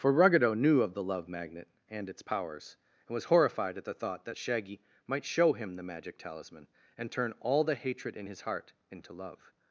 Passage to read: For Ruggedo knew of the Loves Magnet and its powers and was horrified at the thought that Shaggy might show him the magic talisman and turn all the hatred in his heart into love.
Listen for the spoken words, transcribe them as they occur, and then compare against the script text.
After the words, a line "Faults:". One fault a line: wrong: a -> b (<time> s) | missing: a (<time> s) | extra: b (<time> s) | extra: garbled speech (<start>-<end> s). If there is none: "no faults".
For Ruggedo knew of the Love Magnet and its powers and was horrified at the thought that Shaggy might show him the magic talisman and turn all the hatred in his heart into love.
Faults:
wrong: Loves -> Love (1.0 s)